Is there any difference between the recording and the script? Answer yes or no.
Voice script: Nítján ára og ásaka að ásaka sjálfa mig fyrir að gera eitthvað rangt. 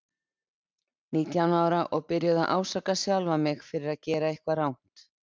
yes